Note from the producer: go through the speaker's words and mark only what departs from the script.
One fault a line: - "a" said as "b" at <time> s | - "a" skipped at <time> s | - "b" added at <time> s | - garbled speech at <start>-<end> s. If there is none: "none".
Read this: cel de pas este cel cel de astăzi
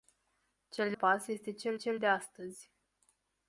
none